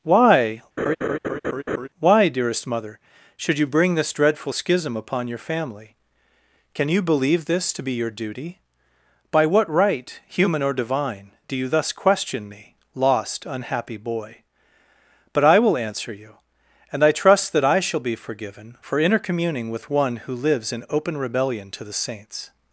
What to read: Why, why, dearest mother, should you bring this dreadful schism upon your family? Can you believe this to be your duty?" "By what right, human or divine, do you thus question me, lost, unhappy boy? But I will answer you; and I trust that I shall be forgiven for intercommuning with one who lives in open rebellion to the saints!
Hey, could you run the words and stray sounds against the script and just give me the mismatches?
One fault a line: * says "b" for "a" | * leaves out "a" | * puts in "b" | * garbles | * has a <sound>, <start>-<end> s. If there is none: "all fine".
* has a laugh, 0.8-1.9 s